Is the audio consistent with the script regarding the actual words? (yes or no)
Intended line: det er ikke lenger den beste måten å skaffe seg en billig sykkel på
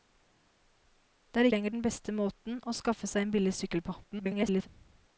no